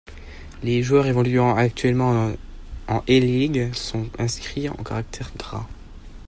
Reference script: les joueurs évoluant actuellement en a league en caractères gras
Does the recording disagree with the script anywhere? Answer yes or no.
yes